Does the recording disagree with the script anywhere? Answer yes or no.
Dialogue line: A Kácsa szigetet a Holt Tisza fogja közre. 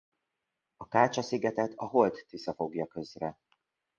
no